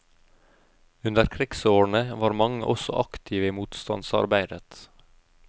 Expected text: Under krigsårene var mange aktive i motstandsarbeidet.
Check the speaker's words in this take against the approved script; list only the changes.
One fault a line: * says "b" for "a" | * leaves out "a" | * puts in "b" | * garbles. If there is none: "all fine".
* puts in "også"